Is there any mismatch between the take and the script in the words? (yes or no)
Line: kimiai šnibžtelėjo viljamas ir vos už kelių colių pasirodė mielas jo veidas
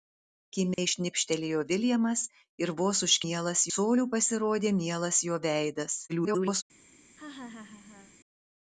yes